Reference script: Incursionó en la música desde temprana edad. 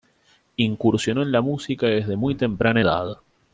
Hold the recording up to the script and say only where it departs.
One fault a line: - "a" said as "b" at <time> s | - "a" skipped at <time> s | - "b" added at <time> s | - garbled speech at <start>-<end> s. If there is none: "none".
- "muy" added at 2.1 s